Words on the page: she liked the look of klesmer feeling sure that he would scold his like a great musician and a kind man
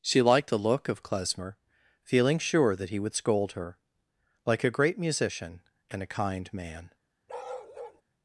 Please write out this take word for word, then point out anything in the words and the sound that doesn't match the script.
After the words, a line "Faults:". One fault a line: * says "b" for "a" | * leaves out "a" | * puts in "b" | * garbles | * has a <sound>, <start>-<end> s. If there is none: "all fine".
she liked the look of klesmer feeling sure that he would scold her like a great musician and a kind man
Faults:
* says "her" for "his"
* has a bark, 7.3-8.0 s